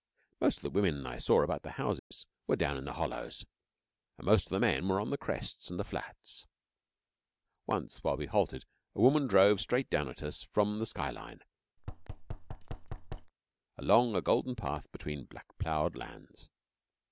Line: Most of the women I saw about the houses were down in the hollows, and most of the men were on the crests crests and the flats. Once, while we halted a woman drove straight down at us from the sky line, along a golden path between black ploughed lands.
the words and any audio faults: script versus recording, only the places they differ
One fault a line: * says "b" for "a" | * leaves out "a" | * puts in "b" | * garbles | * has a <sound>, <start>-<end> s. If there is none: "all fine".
* has a dropout, 2.0-2.1 s
* leaves out "crests"
* has a thud, 11.8-13.3 s